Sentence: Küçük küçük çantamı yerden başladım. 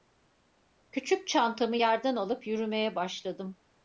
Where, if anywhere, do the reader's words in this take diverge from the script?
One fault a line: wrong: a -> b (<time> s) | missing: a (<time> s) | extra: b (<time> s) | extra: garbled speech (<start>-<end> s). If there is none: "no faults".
missing: küçük (1.3 s)
extra: alıp yürümeye (2.2 s)